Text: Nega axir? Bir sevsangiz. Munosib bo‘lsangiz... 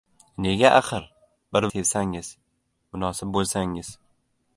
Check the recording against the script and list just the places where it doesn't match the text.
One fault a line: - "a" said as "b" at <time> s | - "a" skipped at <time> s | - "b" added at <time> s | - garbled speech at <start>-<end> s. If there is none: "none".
none